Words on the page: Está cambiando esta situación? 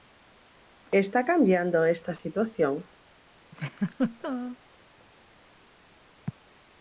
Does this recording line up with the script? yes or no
yes